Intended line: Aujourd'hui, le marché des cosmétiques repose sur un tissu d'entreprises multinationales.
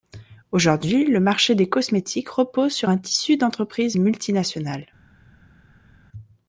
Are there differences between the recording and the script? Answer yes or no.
no